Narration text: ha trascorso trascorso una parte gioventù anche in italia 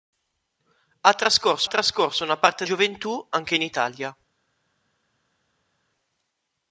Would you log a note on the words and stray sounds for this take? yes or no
no